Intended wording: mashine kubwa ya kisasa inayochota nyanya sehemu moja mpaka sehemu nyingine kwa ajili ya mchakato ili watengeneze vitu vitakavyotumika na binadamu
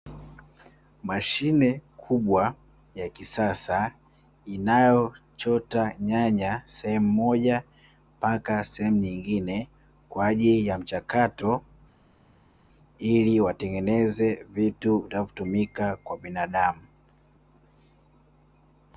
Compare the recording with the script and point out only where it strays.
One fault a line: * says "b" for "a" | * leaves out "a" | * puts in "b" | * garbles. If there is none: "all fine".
* says "kwa" for "na"